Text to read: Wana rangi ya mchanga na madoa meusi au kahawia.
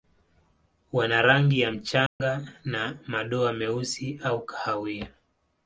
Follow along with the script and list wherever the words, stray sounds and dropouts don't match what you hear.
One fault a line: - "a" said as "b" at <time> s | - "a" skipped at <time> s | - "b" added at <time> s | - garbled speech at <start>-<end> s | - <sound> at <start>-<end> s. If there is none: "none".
- dropout at 2.1-2.2 s